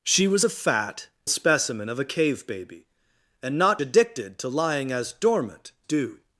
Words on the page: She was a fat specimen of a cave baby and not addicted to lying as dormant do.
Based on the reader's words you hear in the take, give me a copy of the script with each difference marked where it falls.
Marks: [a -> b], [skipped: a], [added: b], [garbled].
She was a fat specimen of a cave baby and not addicted to lying as dormant do.